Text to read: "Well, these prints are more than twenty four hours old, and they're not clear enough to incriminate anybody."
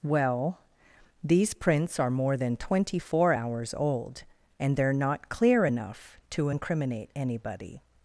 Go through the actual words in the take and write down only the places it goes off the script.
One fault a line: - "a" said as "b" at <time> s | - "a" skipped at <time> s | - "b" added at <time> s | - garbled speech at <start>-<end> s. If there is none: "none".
none